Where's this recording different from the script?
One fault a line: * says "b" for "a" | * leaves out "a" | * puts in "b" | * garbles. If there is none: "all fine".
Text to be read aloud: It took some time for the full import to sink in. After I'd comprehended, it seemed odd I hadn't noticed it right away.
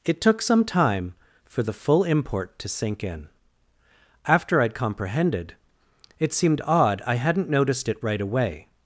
all fine